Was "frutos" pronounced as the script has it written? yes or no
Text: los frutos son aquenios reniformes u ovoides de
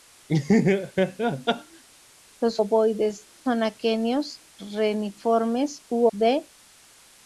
no